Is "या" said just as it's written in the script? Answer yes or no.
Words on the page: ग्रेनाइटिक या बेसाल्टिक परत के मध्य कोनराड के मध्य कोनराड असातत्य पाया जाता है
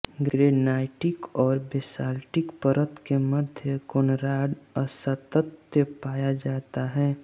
no